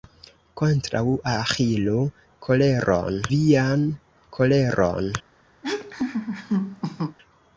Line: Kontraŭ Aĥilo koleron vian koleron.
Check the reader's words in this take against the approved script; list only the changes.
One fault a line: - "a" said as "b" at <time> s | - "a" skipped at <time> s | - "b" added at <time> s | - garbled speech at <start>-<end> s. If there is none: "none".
none